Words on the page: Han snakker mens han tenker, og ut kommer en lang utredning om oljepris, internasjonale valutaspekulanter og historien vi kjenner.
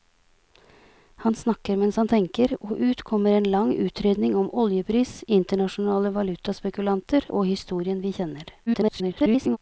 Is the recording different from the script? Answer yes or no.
yes